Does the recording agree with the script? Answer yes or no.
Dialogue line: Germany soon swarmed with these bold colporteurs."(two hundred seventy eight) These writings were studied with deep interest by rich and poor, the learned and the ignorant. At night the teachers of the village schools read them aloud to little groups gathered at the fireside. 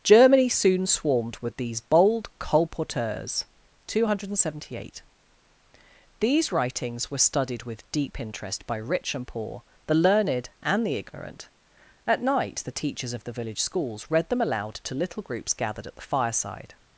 yes